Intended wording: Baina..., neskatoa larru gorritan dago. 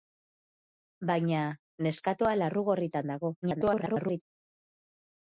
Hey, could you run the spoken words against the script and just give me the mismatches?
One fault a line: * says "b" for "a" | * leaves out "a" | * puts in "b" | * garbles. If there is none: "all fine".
* garbles